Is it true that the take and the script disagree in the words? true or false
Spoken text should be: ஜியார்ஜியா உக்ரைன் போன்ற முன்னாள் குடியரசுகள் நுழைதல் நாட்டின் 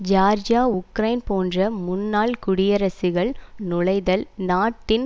false